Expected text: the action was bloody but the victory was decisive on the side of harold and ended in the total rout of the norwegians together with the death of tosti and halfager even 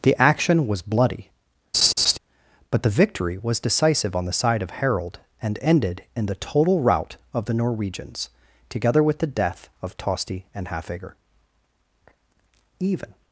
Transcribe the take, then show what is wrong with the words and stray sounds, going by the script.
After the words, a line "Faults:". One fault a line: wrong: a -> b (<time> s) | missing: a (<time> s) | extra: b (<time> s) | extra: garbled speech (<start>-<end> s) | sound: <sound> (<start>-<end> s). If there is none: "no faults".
the action was bloody but the victory was decisive on the side of harold and ended in the total rout of the norwegians together with the death of tosti and halfager even
Faults:
sound: laugh (1.7-2.2 s)